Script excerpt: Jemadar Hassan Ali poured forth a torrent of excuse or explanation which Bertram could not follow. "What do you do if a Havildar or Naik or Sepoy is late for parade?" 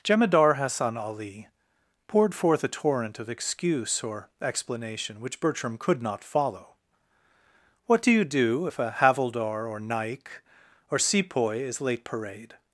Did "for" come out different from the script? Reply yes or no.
yes